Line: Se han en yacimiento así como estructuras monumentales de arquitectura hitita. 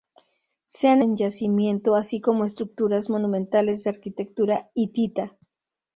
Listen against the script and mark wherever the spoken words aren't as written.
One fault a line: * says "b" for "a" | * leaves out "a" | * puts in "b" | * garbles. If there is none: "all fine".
all fine